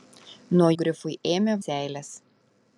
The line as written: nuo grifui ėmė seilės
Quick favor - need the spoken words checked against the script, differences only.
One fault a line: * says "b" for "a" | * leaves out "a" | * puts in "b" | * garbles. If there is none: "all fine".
all fine